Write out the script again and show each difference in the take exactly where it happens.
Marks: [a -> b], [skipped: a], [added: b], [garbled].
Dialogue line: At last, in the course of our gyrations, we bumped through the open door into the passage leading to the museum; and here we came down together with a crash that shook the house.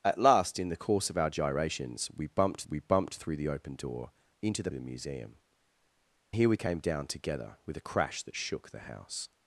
At last, in the course of our gyrations, we bumped [added: we bumped] through the open door into the [skipped: passage leading to] the museum; [skipped: and] here we came down together with a crash that shook the house.